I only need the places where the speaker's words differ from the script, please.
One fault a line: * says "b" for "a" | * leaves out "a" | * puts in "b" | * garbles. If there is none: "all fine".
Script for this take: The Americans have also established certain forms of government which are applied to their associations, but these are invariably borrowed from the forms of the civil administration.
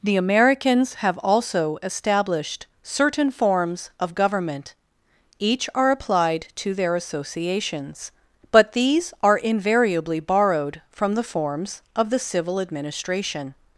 * says "each" for "which"